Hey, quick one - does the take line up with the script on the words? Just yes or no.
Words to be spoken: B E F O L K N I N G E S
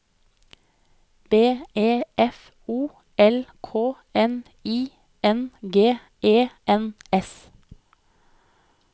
no